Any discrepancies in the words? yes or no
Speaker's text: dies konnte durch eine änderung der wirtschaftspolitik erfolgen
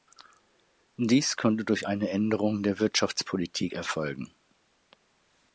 no